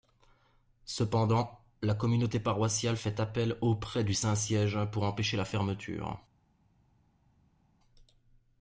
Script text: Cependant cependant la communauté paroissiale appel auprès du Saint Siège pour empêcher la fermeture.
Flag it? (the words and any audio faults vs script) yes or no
yes